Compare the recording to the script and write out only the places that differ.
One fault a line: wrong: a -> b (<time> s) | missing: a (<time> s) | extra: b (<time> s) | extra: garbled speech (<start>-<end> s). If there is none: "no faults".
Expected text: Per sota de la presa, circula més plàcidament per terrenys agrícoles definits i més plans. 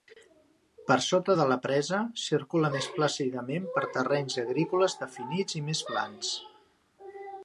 no faults